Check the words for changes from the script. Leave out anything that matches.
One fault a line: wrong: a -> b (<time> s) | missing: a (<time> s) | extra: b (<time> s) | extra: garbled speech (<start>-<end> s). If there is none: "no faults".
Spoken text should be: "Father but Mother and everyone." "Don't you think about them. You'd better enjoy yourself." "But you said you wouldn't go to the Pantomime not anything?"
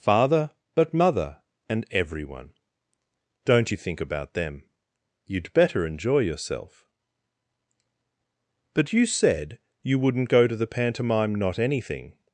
no faults